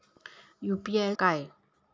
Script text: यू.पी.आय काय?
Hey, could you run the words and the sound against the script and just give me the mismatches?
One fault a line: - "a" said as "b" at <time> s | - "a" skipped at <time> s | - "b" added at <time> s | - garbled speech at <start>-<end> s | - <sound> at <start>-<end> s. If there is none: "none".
none